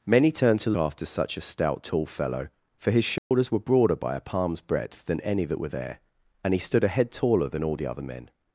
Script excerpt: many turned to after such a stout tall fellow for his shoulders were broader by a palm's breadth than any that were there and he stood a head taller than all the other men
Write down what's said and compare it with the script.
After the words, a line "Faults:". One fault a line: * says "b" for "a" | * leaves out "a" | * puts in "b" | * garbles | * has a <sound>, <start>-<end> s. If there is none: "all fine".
many turned to after such a stout tall fellow for his shoulders were broader by a palm's breadth than any that were there and he stood a head taller than all the other men
Faults:
* has a dropout, 3.2-3.3 s